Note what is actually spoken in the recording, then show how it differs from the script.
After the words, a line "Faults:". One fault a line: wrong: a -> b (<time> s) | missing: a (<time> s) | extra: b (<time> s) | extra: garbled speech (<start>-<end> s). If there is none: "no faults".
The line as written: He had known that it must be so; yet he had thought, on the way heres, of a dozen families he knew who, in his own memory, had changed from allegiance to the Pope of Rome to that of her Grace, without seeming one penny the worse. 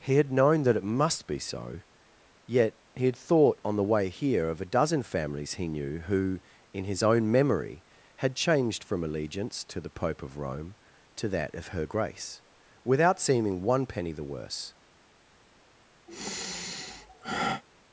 He had known that it must be so; yet he had thought, on the way here, of a dozen families he knew who, in his own memory, had changed from allegiance to the Pope of Rome to that of her Grace, without seeming one penny the worse.
Faults:
wrong: heres -> here (4.1 s)